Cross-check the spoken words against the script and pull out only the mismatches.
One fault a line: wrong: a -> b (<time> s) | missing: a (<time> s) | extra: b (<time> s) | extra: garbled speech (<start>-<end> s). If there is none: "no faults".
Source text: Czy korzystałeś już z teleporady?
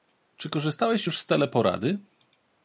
no faults